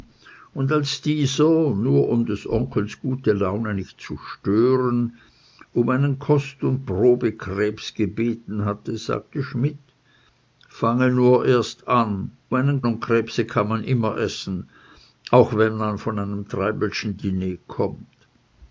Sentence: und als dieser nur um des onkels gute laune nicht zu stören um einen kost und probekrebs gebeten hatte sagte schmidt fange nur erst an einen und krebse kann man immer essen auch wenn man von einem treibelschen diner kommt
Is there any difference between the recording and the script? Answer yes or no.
no